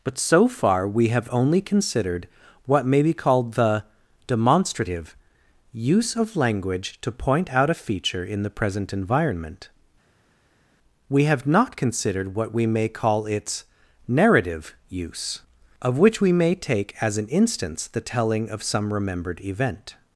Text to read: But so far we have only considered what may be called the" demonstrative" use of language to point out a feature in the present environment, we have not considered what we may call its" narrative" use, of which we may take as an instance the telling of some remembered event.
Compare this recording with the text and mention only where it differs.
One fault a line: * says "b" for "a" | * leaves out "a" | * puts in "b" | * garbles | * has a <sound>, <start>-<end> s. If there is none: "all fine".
all fine